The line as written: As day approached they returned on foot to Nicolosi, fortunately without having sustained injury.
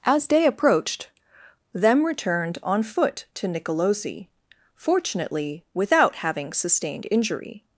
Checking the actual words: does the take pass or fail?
fail